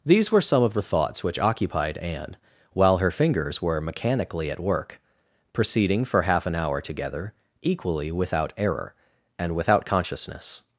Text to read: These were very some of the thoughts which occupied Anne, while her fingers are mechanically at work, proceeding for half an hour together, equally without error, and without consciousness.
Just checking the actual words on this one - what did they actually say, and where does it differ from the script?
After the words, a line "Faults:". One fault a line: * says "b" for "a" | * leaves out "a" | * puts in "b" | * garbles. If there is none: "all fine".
These were some of the thoughts which occupied Anne, while her fingers were mechanically at work, proceeding for half an hour together, equally without error, and without consciousness.
Faults:
* leaves out "very"
* says "were" for "are"